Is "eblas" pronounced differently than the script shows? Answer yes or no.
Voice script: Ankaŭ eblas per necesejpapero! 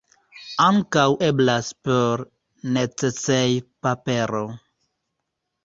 no